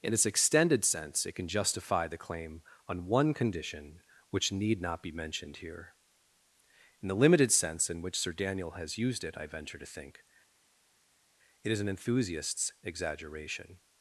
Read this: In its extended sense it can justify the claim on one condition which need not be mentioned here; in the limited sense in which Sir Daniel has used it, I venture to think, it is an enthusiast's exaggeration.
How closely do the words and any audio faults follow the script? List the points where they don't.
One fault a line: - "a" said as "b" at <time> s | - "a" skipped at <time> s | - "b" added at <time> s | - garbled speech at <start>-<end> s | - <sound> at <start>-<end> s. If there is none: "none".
none